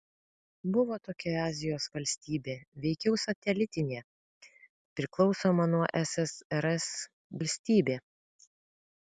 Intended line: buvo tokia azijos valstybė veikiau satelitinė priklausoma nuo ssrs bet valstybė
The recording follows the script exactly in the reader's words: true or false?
false